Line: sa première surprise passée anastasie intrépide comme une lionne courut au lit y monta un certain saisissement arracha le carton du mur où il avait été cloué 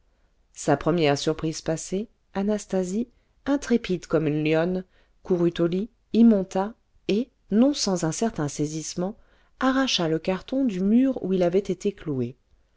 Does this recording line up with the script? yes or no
no